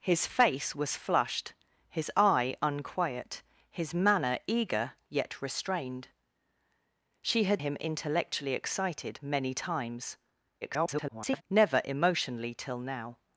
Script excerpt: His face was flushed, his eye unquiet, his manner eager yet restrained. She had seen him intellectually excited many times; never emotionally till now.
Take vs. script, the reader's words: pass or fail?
fail